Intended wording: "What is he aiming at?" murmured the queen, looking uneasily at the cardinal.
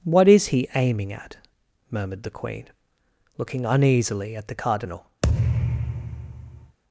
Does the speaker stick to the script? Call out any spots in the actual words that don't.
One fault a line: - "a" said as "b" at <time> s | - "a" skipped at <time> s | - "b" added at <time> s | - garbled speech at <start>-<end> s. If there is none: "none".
none